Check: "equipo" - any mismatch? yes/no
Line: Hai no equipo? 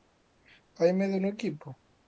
no